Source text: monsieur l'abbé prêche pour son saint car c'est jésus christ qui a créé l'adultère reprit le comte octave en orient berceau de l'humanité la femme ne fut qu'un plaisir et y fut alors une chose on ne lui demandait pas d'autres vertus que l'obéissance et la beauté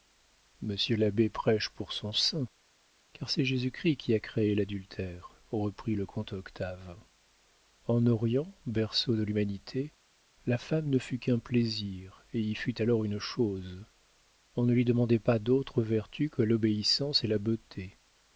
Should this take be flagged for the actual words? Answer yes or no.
no